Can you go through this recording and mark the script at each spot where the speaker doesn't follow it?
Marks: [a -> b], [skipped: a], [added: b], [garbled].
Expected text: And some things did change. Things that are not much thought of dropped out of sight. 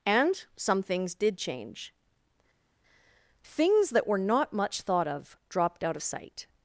And some things did change. Things that [are -> were] not much thought of dropped out of sight.